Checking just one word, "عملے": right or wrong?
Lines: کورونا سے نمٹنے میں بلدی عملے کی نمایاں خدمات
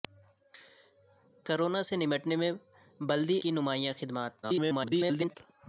wrong